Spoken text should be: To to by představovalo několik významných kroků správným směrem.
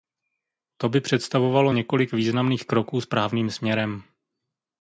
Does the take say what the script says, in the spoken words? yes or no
no